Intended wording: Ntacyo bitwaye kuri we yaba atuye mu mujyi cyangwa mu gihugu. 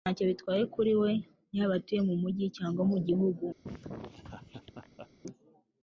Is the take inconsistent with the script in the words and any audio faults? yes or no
yes